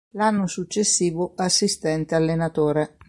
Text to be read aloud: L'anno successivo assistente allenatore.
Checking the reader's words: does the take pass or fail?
pass